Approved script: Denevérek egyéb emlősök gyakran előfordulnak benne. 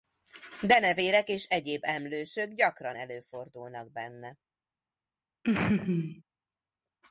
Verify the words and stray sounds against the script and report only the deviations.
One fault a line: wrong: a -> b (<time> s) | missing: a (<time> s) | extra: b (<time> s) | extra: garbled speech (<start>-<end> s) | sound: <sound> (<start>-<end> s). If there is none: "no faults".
extra: és (1.3 s)
sound: laugh (5.4-6.2 s)